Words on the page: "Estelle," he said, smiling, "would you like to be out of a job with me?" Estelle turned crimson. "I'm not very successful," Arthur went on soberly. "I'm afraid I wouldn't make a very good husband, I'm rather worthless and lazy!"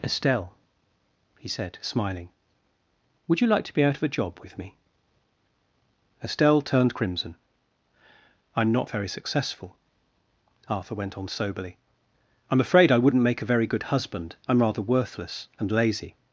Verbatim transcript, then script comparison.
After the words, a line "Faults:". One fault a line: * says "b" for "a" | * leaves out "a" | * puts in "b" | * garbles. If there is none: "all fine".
"Estelle," he said, smiling, "would you like to be out of a job with me?" Estelle turned crimson. "I'm not very successful," Arthur went on soberly. "I'm afraid I wouldn't make a very good husband, I'm rather worthless and lazy!"
Faults:
all fine